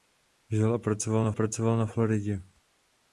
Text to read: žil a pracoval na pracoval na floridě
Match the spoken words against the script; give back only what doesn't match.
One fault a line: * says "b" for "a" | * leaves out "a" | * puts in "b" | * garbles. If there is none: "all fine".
all fine